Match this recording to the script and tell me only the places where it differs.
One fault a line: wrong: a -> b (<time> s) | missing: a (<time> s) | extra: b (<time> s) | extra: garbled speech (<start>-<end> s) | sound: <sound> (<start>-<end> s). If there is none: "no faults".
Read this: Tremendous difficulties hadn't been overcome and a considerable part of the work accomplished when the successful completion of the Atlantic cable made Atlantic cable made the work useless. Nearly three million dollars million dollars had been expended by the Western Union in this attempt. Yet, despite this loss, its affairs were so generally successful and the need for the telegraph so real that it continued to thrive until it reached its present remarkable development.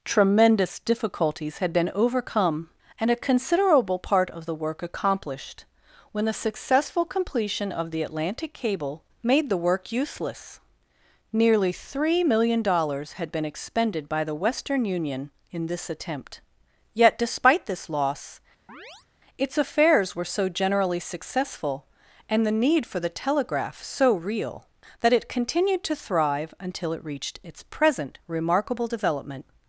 wrong: hadn't -> had (1.6 s)
missing: Atlantic cable made (9.5 s)
missing: million dollars (13.1 s)
sound: chirp (18.7-19.1 s)